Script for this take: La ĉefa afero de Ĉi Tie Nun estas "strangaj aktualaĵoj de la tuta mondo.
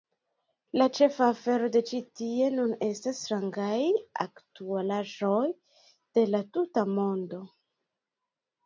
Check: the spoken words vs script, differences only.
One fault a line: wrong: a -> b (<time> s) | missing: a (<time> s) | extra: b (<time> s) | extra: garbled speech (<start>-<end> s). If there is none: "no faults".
no faults